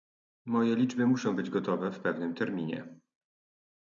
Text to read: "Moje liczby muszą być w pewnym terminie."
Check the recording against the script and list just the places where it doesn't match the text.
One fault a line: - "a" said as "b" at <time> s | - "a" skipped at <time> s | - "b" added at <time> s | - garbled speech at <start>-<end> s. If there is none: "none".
- "gotowe" added at 1.5 s